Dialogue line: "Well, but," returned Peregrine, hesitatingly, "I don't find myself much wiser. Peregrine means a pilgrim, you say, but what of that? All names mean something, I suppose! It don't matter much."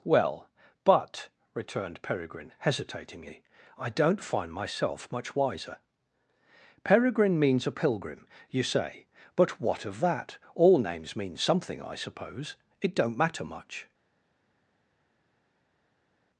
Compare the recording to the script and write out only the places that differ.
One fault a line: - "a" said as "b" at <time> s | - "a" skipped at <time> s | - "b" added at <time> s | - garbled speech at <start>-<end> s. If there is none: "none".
none